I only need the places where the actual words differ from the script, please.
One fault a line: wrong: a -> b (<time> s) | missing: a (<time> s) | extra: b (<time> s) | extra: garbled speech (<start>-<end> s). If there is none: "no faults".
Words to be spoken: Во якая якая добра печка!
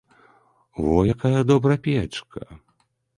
missing: якая (1.4 s)